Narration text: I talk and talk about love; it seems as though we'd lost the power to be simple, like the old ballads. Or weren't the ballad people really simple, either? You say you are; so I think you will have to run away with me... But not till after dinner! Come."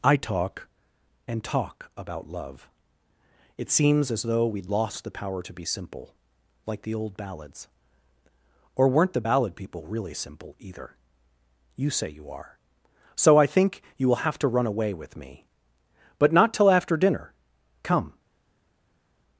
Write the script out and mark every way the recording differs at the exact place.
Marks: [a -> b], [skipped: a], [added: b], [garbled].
I talk and talk about love; it seems as though we'd lost the power to be simple, like the old ballads. Or weren't the ballad people really simple, either? You say you are; so I think you will have to run away with me... But not till after dinner! Come."